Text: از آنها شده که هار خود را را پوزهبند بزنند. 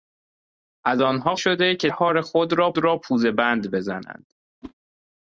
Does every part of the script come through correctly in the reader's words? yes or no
yes